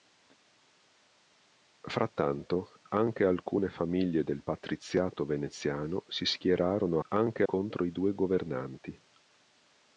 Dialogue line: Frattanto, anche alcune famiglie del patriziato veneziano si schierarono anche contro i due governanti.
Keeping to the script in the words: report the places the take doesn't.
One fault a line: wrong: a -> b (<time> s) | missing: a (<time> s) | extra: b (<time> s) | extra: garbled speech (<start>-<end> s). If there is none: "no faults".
no faults